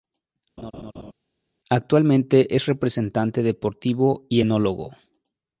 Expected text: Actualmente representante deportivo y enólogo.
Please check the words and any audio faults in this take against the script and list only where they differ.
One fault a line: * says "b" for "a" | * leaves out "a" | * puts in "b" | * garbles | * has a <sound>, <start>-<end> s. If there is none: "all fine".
* has a laugh, 0.6-1.1 s
* puts in "es"